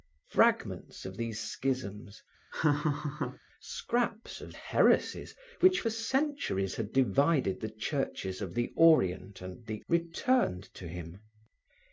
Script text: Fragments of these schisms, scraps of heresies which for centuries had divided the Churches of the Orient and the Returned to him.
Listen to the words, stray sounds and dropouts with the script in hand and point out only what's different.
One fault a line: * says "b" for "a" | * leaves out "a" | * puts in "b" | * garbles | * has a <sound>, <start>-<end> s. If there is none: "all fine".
* has a laugh, 2.5-3.4 s